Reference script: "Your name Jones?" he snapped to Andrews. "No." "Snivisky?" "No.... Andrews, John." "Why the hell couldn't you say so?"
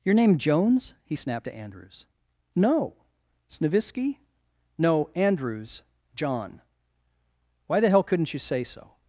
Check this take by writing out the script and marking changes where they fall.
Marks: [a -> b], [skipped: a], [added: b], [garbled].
"Your name Jones?" he snapped to Andrews. "No." "Snivisky?" "No.... Andrews, John." "Why the hell couldn't you say so?"